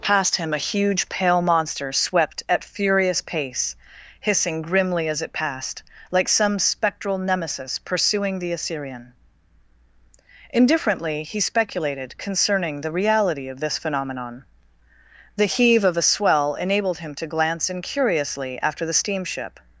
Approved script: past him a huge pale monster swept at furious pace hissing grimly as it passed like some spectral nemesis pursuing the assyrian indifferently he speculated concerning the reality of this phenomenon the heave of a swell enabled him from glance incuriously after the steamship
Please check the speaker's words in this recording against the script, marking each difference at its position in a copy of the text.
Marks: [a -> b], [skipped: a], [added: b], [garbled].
past him a huge pale monster swept at furious pace hissing grimly as it passed like some spectral nemesis pursuing the assyrian indifferently he speculated concerning the reality of this phenomenon the heave of a swell enabled him [from -> to] glance incuriously after the steamship